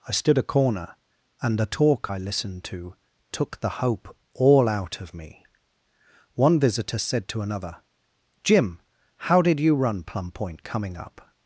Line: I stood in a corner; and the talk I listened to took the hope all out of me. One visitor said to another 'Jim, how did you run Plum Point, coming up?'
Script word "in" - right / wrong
wrong